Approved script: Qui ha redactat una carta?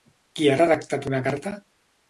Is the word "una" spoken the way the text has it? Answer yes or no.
yes